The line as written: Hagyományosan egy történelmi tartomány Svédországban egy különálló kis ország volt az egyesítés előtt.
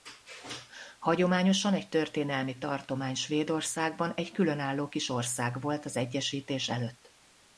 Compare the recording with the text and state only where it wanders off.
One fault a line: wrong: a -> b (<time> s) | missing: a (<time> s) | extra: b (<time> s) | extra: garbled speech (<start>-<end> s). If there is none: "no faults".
no faults